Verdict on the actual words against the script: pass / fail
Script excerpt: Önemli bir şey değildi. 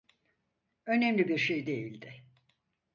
pass